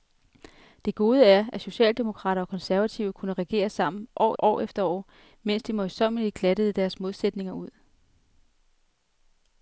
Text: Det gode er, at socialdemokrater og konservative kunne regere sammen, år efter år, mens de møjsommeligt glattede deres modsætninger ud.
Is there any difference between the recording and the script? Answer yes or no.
yes